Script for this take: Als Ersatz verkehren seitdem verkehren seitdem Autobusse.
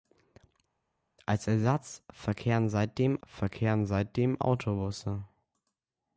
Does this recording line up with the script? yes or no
yes